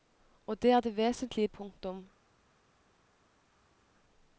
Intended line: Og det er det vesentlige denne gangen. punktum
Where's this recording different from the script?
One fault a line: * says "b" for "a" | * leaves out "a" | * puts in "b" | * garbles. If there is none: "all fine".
* leaves out "denne gangen"